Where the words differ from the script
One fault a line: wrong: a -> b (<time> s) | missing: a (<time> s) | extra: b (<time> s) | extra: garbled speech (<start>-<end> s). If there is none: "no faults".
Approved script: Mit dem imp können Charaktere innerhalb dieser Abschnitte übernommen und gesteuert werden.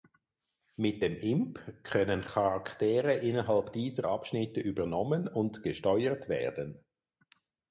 no faults